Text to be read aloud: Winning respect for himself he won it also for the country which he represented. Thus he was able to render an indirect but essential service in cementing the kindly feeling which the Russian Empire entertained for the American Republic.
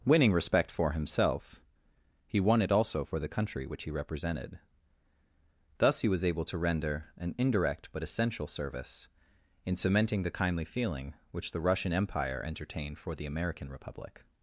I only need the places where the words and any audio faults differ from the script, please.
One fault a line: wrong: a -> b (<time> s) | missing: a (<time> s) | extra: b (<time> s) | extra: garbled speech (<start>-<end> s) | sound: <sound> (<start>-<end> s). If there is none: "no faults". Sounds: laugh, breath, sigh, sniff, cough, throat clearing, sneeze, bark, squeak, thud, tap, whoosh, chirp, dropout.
no faults